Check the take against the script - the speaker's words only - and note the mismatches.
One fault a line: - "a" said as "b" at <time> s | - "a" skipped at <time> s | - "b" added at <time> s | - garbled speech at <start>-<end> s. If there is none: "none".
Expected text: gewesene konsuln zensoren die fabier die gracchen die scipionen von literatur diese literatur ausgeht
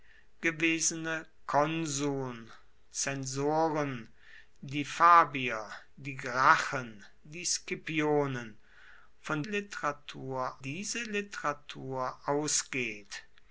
none